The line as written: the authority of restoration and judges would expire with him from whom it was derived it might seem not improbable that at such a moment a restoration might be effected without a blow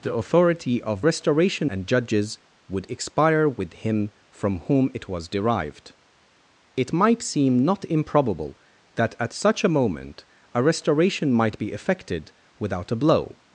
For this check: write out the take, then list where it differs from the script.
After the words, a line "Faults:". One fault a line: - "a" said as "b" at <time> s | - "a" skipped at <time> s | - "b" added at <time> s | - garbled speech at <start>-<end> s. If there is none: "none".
the authority of restoration and judges would expire with him from whom it was derived it might seem not improbable that at such a moment a restoration might be effected without a blow
Faults:
none